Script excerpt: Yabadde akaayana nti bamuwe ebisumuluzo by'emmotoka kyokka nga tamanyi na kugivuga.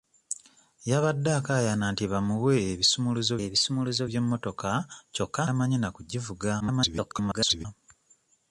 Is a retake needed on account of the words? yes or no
yes